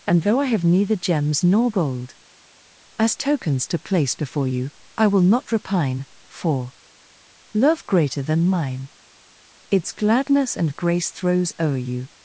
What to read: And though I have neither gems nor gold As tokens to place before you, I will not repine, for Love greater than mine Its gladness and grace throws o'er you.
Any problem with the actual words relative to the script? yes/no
no